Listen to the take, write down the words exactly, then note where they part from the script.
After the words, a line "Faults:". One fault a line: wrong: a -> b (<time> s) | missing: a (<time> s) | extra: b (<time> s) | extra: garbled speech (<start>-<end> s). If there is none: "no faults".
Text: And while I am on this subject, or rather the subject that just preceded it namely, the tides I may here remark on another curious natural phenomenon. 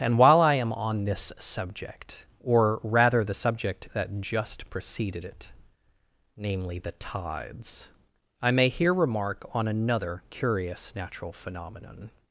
And while I am on this subject, or rather the subject that just preceded it namely, the tides I may here remark on another curious natural phenomenon.
Faults:
no faults